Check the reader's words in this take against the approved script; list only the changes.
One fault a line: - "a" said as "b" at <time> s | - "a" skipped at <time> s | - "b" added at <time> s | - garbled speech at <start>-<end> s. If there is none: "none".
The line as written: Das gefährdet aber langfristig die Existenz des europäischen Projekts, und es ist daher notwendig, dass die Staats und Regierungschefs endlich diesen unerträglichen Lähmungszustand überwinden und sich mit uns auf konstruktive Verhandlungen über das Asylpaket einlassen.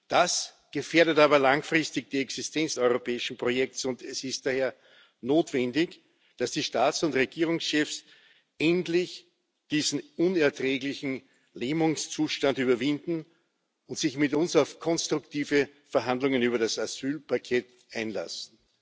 - "des" skipped at 2.8 s